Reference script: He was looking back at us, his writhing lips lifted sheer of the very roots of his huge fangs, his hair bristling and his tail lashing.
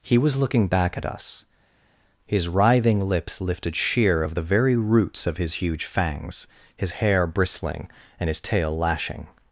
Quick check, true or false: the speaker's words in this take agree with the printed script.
true